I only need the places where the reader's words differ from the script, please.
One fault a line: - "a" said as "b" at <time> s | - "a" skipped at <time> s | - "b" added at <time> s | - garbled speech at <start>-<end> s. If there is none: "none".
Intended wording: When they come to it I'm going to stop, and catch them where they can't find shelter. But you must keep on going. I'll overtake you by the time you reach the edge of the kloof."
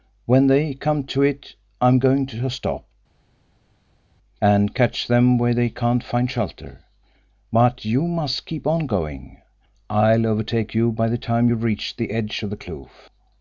none